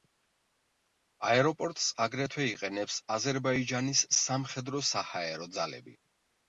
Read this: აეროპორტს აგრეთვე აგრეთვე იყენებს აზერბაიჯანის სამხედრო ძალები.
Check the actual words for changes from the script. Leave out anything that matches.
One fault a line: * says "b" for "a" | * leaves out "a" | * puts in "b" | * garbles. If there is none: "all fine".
* leaves out "აგრეთვე"
* puts in "საჰაერო"